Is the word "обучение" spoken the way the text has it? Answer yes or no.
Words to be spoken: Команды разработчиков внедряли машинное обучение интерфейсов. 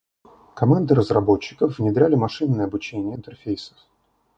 yes